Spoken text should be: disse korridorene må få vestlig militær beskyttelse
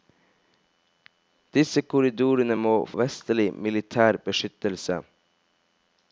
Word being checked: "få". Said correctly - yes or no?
no